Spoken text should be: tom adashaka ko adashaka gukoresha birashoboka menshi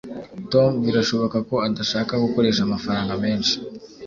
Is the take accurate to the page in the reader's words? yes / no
no